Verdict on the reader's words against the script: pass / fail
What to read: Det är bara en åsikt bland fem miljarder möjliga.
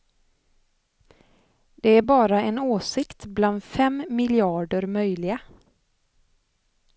pass